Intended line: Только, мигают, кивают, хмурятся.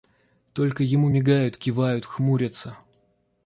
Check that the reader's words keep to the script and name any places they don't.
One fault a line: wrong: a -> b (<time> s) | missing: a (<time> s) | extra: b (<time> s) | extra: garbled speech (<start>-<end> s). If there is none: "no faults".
extra: ему (0.8 s)